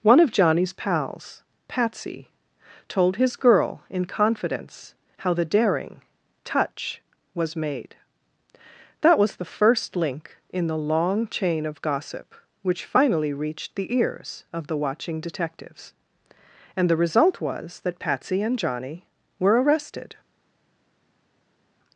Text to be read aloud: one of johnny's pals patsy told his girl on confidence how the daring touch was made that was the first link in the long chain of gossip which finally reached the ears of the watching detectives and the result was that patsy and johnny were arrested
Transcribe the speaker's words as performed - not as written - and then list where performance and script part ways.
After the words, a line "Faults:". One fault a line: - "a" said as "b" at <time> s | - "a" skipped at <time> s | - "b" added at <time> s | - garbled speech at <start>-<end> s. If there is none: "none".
one of johnny's pals patsy told his girl in confidence how the daring touch was made that was the first link in the long chain of gossip which finally reached the ears of the watching detectives and the result was that patsy and johnny were arrested
Faults:
- "on" said as "in" at 3.9 s